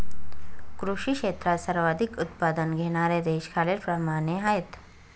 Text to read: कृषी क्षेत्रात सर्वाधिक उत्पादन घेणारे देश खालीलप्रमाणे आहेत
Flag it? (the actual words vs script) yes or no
no